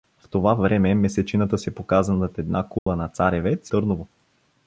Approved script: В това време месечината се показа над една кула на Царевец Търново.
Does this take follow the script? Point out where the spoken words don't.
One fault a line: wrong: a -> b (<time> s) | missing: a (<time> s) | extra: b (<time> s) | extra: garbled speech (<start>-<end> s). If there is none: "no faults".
no faults